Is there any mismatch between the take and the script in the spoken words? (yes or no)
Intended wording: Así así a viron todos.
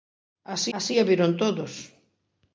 no